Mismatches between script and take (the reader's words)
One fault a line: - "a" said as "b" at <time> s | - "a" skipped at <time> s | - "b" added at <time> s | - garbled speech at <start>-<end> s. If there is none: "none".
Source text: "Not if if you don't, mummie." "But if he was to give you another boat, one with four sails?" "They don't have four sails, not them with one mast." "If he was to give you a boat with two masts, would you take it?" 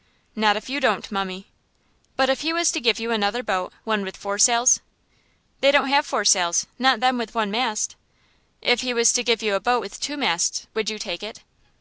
- "if" skipped at 0.7 s